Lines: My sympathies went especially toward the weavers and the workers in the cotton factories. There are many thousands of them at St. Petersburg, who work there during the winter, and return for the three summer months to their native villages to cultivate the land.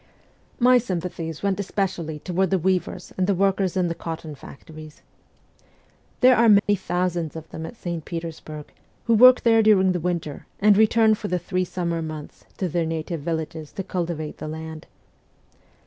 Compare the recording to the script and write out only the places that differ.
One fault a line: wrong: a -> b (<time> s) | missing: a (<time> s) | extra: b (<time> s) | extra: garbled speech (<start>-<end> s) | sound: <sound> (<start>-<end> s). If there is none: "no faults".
sound: dropout (6.6-6.7 s)